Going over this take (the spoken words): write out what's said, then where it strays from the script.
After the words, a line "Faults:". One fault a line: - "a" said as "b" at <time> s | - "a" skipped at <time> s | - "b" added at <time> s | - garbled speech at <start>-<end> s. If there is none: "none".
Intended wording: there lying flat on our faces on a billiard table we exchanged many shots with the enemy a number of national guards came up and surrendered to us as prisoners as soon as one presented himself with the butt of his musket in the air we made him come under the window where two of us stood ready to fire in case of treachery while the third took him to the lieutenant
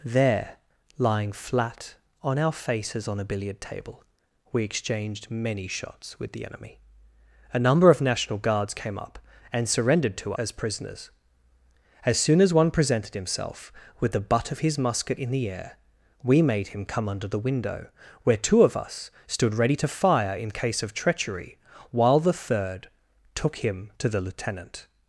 there lying flat on our faces on a billiard table we exchanged many shots with the enemy a number of national guards came up and surrendered to as prisoners as soon as one presented himself with the butt of his musket in the air we made him come under the window where two of us stood ready to fire in case of treachery while the third took him to the lieutenant
Faults:
- "us" skipped at 10.3 s